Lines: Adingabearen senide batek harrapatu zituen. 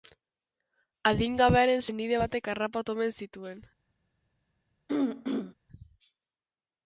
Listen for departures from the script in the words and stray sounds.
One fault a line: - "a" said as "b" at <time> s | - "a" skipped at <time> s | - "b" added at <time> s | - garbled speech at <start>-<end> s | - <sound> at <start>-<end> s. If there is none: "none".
- "omen" added at 3.0 s
- throat clearing at 4.9-5.5 s